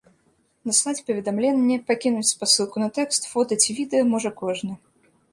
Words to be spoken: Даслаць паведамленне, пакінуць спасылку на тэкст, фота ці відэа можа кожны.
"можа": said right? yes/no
yes